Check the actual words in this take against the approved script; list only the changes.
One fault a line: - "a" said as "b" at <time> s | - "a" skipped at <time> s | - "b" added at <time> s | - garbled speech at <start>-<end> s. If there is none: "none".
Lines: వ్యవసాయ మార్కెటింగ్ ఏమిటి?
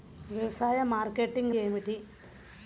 none